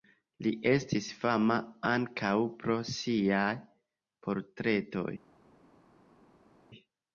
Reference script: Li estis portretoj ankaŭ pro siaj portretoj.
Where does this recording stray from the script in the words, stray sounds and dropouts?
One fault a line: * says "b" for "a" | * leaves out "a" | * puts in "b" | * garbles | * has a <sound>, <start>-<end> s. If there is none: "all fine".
* says "fama" for "portretoj"